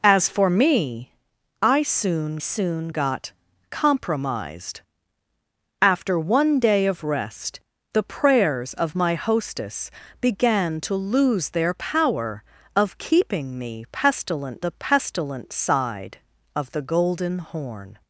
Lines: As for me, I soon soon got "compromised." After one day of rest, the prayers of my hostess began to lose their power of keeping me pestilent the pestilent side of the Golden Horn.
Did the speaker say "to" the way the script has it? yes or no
yes